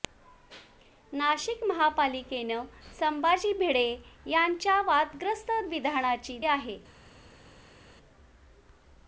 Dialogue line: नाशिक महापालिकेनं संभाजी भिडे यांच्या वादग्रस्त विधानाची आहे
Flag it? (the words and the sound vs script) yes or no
no